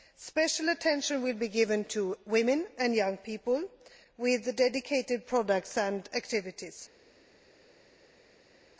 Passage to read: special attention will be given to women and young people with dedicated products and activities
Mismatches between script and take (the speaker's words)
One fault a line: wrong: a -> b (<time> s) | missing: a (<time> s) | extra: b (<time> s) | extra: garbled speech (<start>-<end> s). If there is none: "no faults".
no faults